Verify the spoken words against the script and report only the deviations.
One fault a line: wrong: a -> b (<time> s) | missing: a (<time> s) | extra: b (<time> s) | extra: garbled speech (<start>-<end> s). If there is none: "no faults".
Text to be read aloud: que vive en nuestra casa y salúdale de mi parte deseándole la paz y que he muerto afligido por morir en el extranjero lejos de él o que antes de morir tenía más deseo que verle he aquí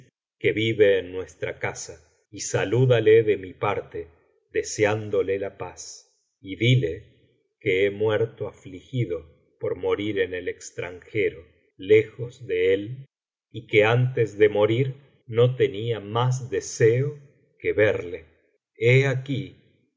extra: dile (6.5 s)
wrong: o -> y (13.5 s)
extra: no (15.3 s)